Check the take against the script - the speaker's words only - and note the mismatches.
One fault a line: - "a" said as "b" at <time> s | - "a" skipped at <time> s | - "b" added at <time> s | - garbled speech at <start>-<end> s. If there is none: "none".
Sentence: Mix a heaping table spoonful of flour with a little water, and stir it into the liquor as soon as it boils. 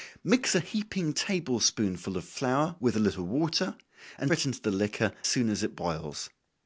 - "stir" skipped at 4.3 s
- "as" skipped at 5.1 s